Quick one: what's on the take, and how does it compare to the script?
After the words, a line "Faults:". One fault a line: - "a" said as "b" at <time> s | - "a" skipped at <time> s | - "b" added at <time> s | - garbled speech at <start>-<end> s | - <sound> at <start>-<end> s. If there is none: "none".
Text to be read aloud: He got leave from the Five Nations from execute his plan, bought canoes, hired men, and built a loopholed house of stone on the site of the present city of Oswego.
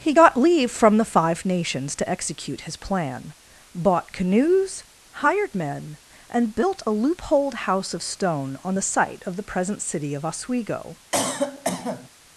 He got leave from the Five Nations to execute his plan, bought canoes, hired men, and built a loopholed house of stone on the site of the present city of Oswego.
Faults:
- "from" said as "to" at 2.0 s
- cough at 11.1-12.1 s